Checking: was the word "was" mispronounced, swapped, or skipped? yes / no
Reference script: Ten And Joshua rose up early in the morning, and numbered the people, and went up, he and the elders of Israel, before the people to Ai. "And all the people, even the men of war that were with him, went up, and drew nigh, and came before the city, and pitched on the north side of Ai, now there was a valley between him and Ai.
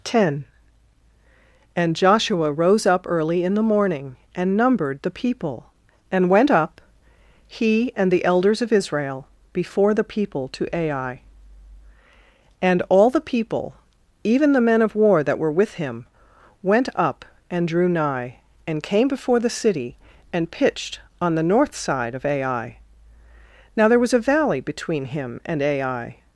no